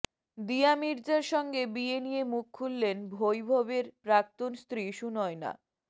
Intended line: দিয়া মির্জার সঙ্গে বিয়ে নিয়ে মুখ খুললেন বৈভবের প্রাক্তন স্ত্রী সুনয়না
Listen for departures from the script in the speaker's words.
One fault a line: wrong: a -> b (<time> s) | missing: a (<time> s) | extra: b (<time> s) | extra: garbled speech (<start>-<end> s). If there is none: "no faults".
no faults